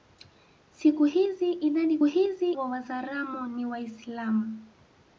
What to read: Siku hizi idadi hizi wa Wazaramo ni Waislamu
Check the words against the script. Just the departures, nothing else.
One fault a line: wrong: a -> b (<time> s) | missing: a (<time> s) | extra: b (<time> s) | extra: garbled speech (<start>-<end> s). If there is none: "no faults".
no faults